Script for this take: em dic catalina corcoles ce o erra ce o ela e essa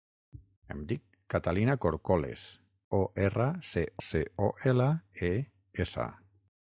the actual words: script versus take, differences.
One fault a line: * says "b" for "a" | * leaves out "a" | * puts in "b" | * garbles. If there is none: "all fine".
* leaves out "ce"
* puts in "ce"